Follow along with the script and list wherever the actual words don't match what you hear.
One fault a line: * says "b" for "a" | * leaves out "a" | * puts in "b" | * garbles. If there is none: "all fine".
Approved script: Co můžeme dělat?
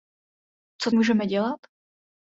all fine